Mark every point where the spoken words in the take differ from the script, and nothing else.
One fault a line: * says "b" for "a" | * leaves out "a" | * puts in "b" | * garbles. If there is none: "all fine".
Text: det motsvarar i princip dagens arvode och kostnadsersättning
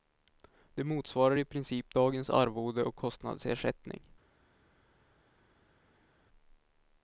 all fine